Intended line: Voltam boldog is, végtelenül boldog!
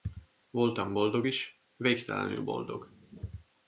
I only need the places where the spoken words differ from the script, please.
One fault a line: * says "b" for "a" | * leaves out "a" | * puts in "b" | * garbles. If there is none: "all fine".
all fine